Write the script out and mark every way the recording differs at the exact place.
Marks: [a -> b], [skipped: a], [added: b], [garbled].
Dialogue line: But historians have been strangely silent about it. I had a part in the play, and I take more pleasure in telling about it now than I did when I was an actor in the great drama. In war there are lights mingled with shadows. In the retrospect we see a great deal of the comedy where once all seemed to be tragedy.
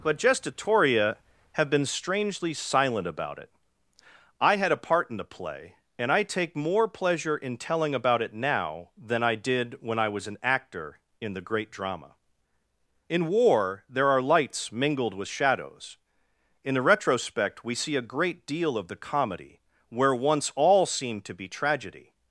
But [historians -> gestatoria] have been strangely silent about it. I had a part in the play, and I take more pleasure in telling about it now than I did when I was an actor in the great drama. In war there are lights mingled with shadows. In the retrospect we see a great deal of the comedy where once all seemed to be tragedy.